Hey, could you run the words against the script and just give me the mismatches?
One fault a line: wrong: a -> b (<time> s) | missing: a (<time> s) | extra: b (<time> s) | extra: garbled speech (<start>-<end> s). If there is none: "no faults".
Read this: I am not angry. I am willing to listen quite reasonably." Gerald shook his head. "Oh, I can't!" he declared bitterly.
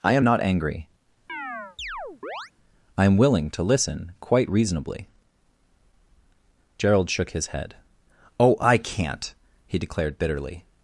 no faults